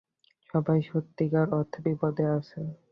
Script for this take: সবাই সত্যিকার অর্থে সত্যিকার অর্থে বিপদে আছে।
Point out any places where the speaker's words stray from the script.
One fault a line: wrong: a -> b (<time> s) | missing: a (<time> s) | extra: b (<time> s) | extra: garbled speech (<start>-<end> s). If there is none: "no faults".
missing: সত্যিকার অর্থে (1.8 s)